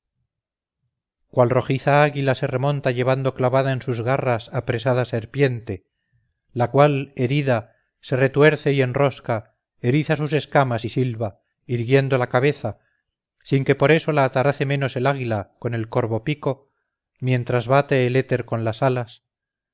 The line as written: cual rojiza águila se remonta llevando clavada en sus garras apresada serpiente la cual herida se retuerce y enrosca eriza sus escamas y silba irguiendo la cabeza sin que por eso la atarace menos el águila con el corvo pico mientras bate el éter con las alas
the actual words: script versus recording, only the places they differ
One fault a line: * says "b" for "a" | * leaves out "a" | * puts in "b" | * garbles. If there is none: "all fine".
all fine